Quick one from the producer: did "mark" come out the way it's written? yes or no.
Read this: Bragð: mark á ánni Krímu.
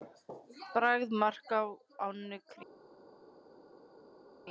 yes